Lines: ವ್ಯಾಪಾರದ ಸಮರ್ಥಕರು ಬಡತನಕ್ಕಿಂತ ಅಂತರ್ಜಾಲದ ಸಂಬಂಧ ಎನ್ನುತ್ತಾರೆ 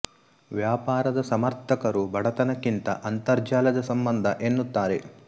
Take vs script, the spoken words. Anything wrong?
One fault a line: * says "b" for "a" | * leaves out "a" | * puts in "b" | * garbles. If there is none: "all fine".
all fine